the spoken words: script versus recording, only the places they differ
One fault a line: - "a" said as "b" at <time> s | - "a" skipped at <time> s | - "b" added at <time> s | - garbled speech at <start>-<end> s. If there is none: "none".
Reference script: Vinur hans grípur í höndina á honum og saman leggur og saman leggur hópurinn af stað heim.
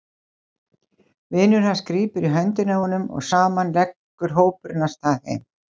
- "og saman leggur" skipped at 4.4 s